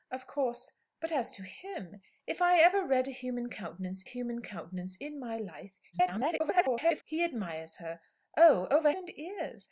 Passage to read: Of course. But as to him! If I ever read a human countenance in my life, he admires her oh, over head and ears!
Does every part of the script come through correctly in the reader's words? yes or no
no